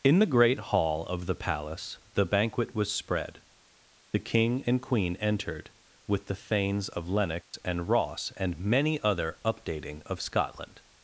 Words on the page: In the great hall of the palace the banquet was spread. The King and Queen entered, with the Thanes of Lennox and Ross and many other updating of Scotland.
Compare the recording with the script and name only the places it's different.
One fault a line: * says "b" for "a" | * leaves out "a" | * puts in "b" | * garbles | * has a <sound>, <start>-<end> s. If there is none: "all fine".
* has a dropout, 7.4-7.5 s